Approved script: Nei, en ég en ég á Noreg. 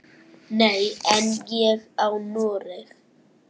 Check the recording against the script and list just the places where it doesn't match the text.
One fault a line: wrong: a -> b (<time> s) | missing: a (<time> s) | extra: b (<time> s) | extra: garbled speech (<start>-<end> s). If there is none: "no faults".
missing: en ég (1.8 s)